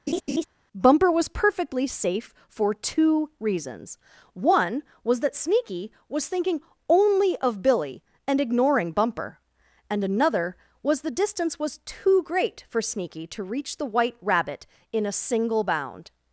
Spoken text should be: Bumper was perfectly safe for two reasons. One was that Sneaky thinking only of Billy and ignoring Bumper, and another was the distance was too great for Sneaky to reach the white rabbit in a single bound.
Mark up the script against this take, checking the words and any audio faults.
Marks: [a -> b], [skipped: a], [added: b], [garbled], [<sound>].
[laugh] Bumper was perfectly safe for two reasons. One was that Sneaky [added: was] thinking only of Billy and ignoring Bumper, and another was the distance was too great for Sneaky to reach the white rabbit in a single bound.